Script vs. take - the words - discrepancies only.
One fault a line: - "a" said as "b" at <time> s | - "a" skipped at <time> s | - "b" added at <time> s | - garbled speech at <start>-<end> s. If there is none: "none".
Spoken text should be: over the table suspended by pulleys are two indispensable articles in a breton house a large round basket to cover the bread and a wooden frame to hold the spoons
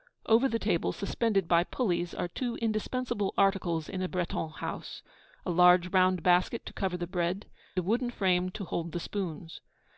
- "and" skipped at 7.5 s